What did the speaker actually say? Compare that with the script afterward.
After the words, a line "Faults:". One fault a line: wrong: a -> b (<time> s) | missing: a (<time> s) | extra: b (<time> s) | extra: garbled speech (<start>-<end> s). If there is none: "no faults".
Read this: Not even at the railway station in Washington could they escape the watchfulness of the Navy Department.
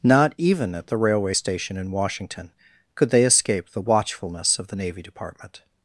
Not even at the railway station in Washington could they escape the watchfulness of the Navy Department.
Faults:
no faults